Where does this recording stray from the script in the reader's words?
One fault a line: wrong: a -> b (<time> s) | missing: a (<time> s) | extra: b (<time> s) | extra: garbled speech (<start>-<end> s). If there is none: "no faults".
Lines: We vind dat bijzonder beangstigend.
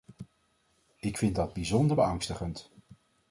wrong: We -> Ik (1.0 s)